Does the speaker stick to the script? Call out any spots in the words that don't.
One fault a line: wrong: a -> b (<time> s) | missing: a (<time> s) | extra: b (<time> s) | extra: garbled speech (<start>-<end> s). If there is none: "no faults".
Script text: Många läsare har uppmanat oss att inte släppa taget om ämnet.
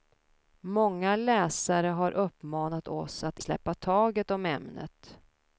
missing: inte (3.4 s)